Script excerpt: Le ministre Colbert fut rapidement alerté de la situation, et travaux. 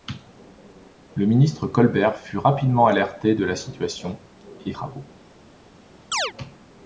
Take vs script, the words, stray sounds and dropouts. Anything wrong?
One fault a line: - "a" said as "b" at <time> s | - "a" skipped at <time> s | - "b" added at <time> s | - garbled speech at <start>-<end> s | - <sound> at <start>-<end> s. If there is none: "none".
- chirp at 6.1-6.3 s